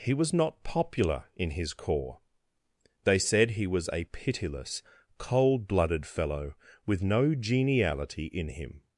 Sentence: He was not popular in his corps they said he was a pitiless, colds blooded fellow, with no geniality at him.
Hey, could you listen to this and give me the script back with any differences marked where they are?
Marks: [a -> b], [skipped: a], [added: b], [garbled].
He was not popular in his corps they said he was a pitiless, [colds -> cold] blooded fellow, with no geniality [at -> in] him.